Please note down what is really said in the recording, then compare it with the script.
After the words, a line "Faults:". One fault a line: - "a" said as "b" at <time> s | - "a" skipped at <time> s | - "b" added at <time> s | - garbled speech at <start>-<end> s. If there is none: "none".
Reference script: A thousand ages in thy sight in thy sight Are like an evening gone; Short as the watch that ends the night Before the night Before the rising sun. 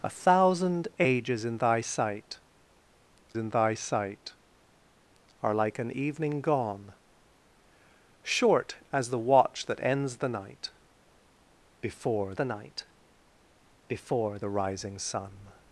A thousand ages in thy sight in thy sight Are like an evening gone; Short as the watch that ends the night Before the night Before the rising sun.
Faults:
none